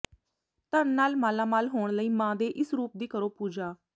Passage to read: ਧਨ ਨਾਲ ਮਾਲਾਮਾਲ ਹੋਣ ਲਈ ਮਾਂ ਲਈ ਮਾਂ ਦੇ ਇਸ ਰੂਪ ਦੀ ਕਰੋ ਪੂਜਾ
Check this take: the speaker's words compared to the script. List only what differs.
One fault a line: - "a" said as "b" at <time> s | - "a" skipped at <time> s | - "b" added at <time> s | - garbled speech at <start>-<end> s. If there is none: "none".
- "ਲਈ ਮਾਂ" skipped at 2.4 s